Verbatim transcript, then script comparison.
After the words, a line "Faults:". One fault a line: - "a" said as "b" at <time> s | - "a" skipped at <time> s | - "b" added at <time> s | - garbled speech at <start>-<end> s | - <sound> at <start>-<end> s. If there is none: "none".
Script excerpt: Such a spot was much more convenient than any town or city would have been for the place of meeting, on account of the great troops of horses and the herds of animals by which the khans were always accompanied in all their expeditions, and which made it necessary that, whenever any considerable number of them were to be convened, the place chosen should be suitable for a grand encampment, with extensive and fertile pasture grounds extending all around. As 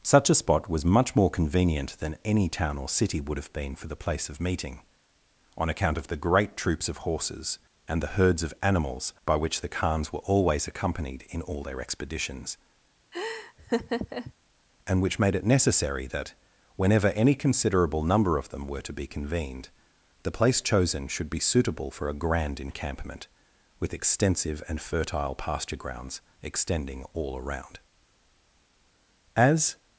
Such a spot was much more convenient than any town or city would have been for the place of meeting, on account of the great troops of horses and the herds of animals by which the khans were always accompanied in all their expeditions, and which made it necessary that, whenever any considerable number of them were to be convened, the place chosen should be suitable for a grand encampment, with extensive and fertile pasture grounds extending all around. As
Faults:
- laugh at 13.1-14.3 s